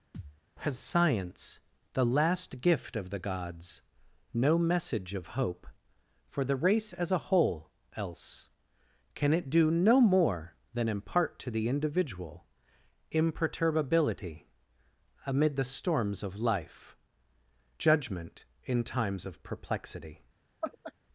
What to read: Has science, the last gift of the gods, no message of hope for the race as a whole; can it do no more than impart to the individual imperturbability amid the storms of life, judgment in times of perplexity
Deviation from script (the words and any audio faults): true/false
true